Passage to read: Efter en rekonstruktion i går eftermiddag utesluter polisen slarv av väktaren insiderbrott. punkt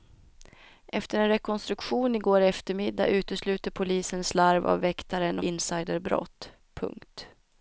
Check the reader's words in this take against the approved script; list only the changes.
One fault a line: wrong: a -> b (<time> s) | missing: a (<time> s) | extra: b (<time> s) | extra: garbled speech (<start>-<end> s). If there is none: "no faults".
no faults